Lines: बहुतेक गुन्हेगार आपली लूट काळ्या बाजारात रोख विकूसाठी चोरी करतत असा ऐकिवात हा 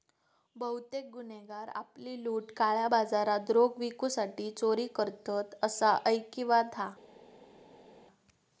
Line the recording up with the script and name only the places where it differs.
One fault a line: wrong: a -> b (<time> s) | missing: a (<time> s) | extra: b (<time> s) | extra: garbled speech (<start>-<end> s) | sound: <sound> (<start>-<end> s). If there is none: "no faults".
no faults